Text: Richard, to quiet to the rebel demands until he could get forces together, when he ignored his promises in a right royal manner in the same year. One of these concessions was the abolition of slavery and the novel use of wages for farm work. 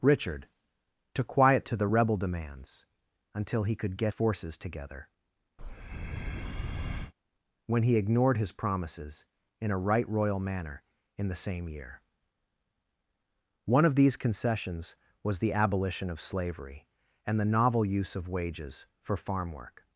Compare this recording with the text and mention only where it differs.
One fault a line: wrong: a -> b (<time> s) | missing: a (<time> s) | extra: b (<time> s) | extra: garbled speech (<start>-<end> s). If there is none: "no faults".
no faults